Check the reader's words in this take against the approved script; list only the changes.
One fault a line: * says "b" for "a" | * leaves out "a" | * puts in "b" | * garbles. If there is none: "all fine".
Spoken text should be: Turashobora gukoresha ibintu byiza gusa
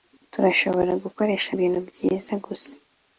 all fine